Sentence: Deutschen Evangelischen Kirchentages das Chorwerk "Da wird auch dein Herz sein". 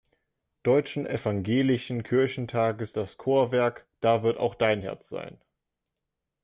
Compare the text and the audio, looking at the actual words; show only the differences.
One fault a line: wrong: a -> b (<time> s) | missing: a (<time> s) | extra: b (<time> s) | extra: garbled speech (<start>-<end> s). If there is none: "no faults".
no faults